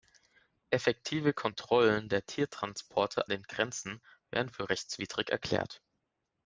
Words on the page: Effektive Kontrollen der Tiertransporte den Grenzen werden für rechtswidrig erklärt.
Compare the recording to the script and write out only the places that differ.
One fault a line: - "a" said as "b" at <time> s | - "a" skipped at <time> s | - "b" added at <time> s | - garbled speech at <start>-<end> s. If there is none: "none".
none